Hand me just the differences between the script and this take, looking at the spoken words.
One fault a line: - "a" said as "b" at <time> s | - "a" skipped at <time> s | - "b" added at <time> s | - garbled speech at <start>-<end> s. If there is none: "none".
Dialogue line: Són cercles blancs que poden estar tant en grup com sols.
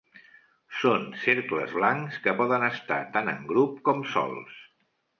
none